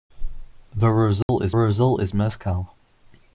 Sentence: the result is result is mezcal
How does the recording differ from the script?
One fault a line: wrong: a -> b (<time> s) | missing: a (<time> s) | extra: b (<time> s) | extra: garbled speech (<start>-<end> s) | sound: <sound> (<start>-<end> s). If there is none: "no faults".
sound: dropout (1.2-1.3 s)